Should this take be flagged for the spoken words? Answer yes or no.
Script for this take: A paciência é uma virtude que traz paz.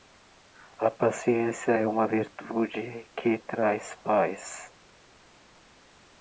no